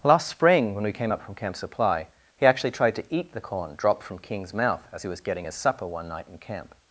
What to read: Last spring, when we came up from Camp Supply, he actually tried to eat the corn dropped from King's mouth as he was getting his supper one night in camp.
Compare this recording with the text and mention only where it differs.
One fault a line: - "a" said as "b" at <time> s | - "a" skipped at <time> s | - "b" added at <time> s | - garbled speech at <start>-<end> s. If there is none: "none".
none